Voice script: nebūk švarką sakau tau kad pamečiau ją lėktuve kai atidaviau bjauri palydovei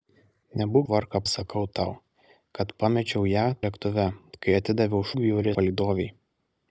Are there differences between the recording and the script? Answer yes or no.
no